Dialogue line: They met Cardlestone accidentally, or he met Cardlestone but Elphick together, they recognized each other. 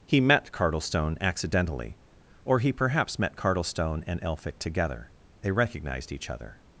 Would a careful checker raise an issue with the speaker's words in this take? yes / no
yes